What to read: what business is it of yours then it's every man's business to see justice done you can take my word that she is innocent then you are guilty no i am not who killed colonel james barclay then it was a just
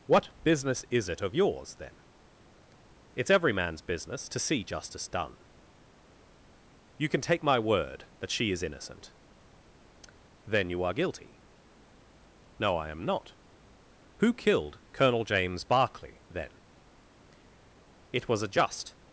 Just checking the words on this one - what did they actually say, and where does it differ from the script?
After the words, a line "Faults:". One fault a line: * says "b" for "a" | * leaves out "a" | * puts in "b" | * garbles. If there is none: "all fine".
what business is it of yours then it's every man's business to see justice done you can take my word that she is innocent then you are guilty no i am not who killed colonel james barclay then it was a just
Faults:
all fine